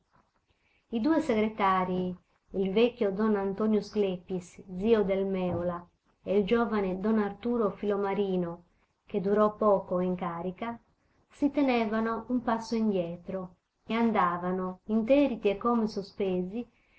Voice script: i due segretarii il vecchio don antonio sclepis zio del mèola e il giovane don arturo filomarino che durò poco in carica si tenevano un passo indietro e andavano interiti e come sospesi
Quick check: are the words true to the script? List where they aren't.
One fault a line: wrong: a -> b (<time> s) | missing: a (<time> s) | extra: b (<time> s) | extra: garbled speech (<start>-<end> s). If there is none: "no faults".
no faults